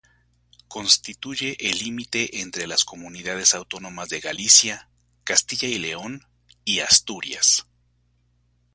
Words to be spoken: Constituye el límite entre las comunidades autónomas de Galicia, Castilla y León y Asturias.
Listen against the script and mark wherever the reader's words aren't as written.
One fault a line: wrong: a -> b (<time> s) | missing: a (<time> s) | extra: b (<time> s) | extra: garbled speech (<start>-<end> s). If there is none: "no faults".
no faults